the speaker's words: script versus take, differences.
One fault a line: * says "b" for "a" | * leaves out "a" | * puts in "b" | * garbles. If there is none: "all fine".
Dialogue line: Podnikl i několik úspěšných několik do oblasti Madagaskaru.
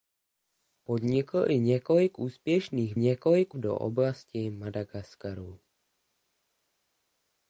all fine